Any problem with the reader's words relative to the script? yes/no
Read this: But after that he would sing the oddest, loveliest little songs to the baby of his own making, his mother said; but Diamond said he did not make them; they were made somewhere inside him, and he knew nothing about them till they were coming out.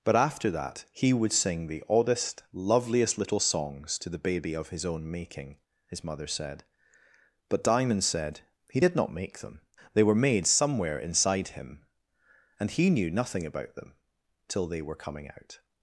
no